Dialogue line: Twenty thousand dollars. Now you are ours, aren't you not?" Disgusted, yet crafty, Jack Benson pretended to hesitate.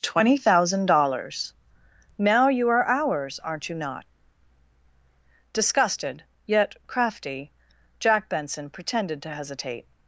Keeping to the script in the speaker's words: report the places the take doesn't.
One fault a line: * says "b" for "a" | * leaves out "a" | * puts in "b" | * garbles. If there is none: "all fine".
all fine